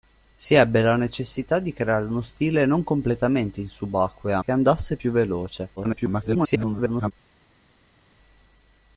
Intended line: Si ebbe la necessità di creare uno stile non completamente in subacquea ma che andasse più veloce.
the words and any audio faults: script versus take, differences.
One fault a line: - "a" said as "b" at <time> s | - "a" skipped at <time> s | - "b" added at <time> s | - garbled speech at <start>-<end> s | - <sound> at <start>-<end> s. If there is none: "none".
- "ma" skipped at 4.4 s
- garbled speech at 5.8-7.1 s